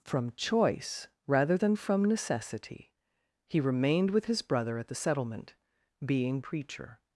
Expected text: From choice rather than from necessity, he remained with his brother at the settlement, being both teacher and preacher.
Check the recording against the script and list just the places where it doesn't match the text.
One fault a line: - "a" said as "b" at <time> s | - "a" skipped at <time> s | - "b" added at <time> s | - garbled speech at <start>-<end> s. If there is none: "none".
- "both teacher and" skipped at 6.4 s